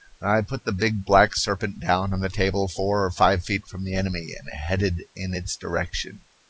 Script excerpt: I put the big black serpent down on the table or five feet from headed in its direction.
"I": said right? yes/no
yes